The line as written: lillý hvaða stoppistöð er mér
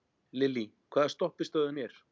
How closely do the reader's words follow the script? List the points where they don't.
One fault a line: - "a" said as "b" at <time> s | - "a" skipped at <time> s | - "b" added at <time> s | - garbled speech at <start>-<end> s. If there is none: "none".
none